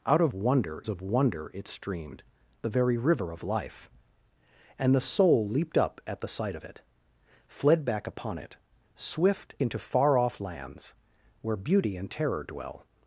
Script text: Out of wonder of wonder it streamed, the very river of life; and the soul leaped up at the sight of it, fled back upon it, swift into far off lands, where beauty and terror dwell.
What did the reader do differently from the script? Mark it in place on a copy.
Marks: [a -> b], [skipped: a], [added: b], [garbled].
Out of wonder of wonder it streamed, the very river of life; and the soul leaped up at the sight of it, fled back upon it, swift into far off lands, where beauty and terror dwell.